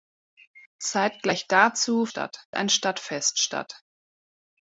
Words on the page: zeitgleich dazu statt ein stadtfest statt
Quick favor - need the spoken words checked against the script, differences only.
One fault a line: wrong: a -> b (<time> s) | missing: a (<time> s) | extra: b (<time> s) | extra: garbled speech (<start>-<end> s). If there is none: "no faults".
no faults